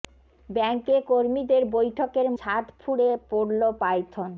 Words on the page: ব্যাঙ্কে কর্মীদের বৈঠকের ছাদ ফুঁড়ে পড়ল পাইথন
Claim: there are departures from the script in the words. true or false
false